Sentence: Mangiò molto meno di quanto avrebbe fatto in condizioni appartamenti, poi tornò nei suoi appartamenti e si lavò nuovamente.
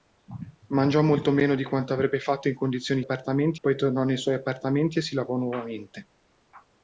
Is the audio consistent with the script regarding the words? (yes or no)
yes